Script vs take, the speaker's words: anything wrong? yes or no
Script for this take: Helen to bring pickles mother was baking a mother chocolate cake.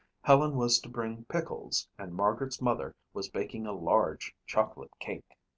yes